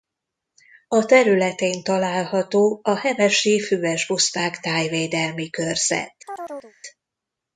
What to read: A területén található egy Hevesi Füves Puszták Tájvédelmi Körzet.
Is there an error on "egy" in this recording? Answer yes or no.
yes